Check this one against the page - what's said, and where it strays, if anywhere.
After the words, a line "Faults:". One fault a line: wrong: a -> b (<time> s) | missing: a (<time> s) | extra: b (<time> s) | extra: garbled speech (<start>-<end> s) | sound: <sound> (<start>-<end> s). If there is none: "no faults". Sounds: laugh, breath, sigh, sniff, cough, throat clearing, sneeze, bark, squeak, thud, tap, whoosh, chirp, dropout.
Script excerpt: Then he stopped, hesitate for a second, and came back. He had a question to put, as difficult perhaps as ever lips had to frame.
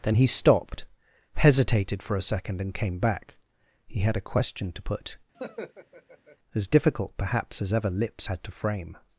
Then he stopped, hesitated for a second, and came back. He had a question to put, as difficult perhaps as ever lips had to frame.
Faults:
wrong: hesitate -> hesitated (1.3 s)
sound: laugh (5.3-6.4 s)